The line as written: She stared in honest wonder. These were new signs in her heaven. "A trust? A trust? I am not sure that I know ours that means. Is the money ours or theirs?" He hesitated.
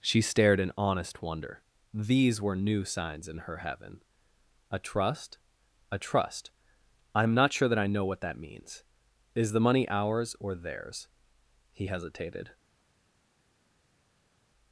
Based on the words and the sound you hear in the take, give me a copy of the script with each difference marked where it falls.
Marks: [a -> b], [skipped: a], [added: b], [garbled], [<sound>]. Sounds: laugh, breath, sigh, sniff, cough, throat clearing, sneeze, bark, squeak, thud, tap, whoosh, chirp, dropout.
She stared in honest wonder. These were new signs in her heaven. "A trust? A trust? I am not sure that I know [ours -> what] that means. Is the money ours or theirs?" He hesitated.